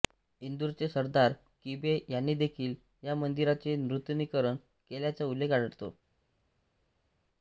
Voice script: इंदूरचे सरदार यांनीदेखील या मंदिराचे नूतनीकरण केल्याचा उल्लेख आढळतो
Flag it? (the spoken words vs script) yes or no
yes